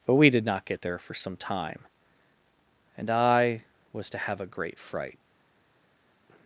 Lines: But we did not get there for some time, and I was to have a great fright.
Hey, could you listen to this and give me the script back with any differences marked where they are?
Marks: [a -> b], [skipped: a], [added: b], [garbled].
But we did not get there for some time, and I was to have a great fright.